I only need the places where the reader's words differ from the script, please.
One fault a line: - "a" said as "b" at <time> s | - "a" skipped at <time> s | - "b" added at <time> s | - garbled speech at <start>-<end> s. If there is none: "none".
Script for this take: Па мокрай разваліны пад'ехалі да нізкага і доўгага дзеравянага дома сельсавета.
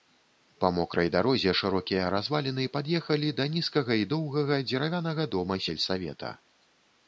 - "дарозе шырокія" added at 1.2 s